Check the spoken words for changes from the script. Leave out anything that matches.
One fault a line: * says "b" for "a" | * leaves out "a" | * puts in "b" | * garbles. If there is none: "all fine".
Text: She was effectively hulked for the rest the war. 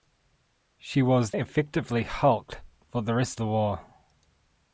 all fine